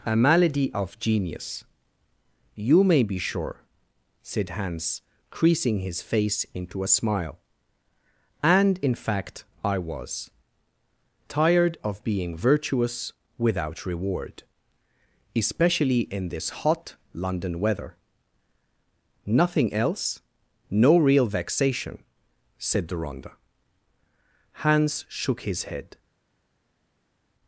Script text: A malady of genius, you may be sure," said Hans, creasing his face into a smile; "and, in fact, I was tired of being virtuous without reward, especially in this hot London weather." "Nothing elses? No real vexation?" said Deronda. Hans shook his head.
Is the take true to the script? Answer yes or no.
no